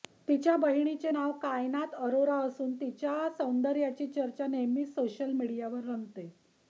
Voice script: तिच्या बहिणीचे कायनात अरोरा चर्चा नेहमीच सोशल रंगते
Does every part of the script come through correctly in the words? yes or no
no